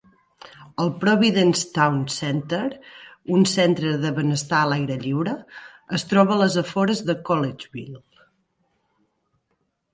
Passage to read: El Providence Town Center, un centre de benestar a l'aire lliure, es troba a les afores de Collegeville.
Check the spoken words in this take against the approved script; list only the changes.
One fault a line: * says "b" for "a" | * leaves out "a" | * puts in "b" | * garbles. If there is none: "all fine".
all fine